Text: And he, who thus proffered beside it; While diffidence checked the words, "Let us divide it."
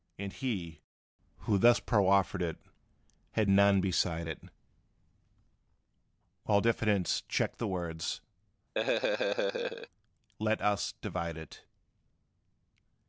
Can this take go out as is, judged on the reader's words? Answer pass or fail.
fail